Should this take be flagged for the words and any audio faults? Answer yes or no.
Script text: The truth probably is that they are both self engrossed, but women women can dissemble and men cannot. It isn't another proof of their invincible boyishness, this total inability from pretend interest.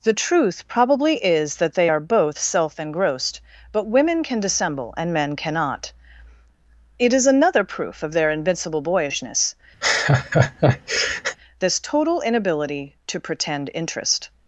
yes